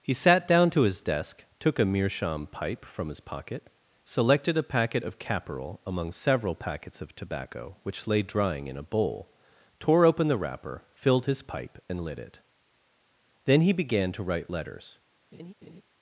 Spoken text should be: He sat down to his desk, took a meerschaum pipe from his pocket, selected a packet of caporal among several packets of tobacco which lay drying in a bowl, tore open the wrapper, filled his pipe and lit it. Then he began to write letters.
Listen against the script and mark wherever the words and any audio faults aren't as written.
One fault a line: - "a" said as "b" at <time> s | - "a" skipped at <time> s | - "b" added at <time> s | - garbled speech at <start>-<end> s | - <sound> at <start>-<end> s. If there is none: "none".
- laugh at 15.3-15.8 s